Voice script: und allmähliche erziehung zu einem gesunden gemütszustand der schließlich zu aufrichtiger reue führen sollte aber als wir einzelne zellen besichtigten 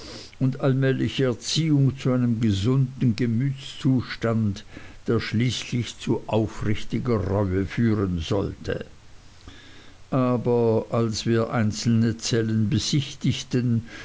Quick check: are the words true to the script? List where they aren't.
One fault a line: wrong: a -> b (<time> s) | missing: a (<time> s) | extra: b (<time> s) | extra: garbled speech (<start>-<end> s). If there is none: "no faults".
no faults